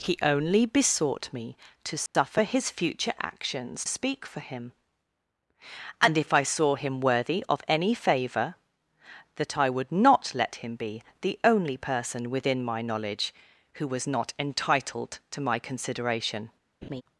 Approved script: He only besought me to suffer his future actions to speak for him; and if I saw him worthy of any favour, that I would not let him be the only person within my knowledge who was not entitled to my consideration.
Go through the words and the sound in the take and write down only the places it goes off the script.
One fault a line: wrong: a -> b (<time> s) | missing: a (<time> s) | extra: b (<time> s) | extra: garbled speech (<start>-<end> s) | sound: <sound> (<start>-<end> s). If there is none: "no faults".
sound: dropout (2.1-2.1 s)
missing: to (3.9 s)
sound: laugh (16.8-17.0 s)